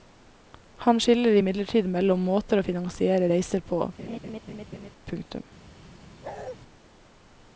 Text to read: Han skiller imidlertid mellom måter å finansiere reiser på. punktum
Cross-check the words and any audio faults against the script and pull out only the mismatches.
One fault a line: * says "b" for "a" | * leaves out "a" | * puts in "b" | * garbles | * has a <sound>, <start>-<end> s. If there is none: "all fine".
* has a laugh, 4.0-4.9 s
* has a bark, 6.2-6.6 s